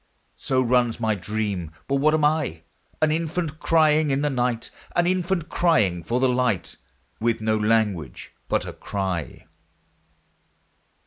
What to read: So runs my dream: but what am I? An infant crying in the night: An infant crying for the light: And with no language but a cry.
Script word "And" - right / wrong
wrong